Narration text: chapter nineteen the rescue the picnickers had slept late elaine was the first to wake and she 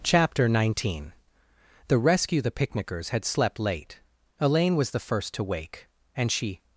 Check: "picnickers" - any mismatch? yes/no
no